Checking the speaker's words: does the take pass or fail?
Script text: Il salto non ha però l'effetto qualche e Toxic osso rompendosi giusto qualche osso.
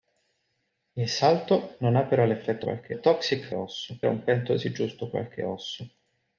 pass